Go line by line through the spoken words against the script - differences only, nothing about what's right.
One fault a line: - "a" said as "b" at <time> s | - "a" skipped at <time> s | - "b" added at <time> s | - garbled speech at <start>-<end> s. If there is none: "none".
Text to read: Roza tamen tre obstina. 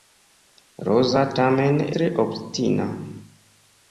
none